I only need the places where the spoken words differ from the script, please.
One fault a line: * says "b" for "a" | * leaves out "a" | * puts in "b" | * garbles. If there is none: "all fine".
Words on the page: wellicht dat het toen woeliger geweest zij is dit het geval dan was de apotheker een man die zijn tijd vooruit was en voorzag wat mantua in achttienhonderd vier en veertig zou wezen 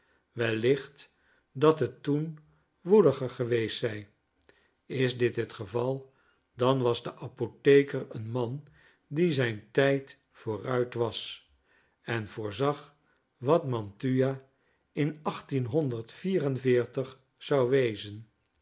all fine